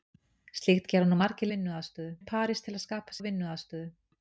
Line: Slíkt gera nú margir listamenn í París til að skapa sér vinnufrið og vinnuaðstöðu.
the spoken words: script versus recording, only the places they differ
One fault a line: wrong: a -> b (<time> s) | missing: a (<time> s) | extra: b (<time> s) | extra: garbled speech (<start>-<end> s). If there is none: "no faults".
wrong: listamenn -> vinnuaðstöðu (1.5 s)
missing: sér vinnufrið (3.2 s)